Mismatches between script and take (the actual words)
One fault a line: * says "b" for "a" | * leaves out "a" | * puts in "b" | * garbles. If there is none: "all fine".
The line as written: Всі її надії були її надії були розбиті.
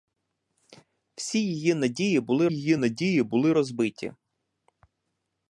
all fine